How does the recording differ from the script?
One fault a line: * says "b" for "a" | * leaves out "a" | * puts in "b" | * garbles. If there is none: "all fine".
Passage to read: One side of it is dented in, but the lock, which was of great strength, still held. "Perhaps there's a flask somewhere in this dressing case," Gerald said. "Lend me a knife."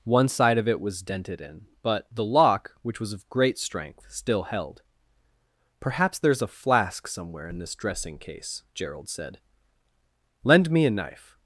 * says "was" for "is"